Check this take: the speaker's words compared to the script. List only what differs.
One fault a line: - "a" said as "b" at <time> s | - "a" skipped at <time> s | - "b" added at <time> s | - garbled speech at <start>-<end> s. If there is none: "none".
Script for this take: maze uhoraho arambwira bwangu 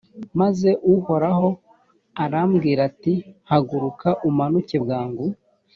- "ati haguruka umanuke" added at 2.9 s